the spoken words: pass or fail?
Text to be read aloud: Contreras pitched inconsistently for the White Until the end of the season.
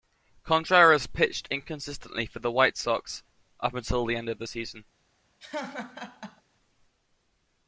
fail